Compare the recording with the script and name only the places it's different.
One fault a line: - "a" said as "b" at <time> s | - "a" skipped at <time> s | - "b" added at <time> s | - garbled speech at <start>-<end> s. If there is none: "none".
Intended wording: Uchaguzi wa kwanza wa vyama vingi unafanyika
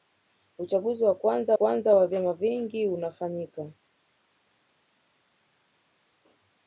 - "kwanza" added at 1.5 s